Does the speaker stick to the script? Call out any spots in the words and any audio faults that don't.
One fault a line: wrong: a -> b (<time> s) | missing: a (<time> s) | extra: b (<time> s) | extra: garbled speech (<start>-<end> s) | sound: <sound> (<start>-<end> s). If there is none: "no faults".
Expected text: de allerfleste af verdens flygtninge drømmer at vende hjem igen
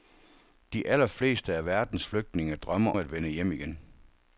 no faults